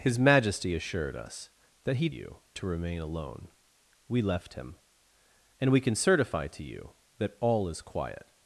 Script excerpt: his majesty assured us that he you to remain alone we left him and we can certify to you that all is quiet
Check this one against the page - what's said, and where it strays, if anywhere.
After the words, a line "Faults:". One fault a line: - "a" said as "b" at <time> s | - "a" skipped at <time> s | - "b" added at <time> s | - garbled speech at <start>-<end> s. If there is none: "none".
his majesty assured us that he you to remain alone we left him and we can certify to you that all is quiet
Faults:
none